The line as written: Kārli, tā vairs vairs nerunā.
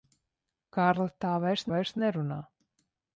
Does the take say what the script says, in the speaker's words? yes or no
yes